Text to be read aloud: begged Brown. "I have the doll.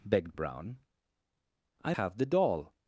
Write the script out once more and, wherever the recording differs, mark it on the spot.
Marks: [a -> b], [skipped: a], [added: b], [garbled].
begged Brown. "I have the doll.